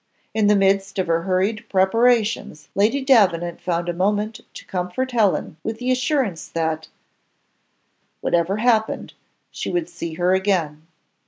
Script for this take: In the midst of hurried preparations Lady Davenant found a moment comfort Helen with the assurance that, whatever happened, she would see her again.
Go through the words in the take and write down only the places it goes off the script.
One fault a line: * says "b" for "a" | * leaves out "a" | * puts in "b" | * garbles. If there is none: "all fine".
* puts in "her"
* puts in "to"